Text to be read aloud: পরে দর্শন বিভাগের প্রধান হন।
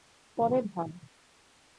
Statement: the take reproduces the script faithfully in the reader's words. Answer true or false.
false